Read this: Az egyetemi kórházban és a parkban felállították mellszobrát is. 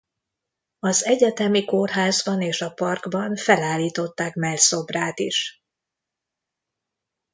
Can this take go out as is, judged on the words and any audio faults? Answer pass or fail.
pass